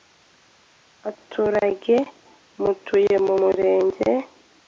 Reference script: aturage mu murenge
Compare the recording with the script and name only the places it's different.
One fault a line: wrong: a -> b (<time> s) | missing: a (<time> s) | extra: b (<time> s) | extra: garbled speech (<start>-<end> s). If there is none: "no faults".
extra: mutuye (2.6 s)